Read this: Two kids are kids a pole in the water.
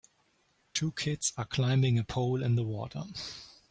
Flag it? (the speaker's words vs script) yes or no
yes